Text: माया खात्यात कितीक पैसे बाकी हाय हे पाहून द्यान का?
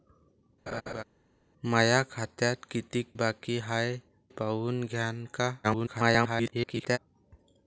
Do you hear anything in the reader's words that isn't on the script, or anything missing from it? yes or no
yes